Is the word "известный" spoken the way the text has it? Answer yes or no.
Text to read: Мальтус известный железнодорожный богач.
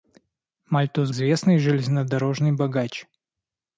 yes